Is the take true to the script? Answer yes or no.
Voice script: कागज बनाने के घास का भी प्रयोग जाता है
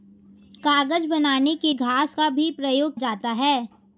yes